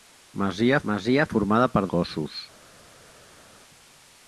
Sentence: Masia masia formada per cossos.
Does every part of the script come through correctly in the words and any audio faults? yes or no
yes